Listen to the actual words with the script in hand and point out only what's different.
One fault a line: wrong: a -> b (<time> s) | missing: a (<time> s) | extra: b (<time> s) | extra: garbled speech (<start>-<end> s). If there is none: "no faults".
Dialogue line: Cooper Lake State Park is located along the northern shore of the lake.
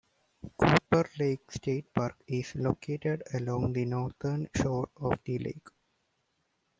no faults